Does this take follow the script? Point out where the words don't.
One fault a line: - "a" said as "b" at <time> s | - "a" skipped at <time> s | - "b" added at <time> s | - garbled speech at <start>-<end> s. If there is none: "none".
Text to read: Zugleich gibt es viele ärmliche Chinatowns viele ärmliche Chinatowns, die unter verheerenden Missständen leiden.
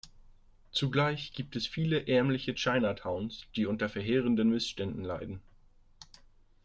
- "viele ärmliche Chinatowns" skipped at 3.5 s